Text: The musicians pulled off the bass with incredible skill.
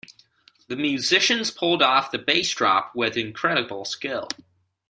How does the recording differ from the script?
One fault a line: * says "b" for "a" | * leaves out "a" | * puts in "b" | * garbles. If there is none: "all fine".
* puts in "drop"